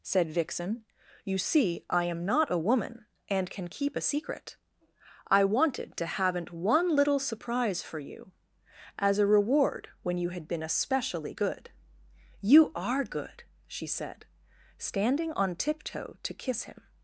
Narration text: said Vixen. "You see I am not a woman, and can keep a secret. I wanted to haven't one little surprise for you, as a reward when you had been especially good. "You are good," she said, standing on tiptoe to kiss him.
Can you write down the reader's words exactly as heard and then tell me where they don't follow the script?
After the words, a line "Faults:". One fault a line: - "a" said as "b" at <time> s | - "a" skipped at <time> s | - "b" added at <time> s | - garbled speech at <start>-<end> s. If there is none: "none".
said Vixen. "You see I am not a woman, and can keep a secret. I wanted to haven't one little surprise for you, as a reward when you had been especially good. "You are good," she said, standing on tiptoe to kiss him.
Faults:
none